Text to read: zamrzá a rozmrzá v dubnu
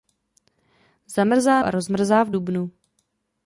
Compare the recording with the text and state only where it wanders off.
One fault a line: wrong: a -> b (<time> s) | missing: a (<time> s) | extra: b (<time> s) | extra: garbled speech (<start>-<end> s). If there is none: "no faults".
no faults